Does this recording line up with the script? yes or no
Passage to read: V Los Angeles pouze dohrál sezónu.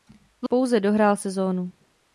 no